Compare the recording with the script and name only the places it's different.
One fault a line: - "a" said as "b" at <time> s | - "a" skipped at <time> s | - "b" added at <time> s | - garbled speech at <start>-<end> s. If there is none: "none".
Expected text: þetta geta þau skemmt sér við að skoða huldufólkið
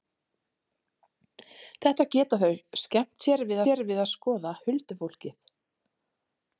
- "sér við" added at 3.7 s